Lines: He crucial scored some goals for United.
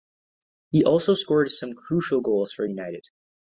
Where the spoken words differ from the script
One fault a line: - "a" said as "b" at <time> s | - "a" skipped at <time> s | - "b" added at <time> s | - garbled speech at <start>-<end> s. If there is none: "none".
- "crucial" said as "also" at 0.8 s
- "crucial" added at 1.7 s